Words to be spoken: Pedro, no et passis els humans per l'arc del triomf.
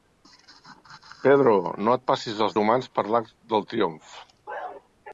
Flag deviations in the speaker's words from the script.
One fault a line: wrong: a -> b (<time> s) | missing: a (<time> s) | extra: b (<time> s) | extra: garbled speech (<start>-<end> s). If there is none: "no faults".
no faults